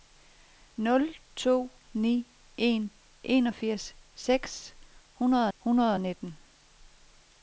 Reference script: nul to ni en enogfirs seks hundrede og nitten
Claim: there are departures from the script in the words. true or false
true